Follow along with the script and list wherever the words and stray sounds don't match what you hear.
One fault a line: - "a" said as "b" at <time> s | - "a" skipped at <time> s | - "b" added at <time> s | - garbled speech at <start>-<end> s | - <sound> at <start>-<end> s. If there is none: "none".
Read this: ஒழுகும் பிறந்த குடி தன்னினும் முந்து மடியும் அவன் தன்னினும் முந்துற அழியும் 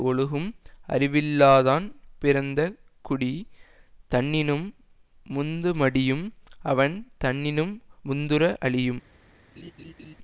- "அறிவில்லாதான்" added at 0.9 s
- laugh at 9.6-10.1 s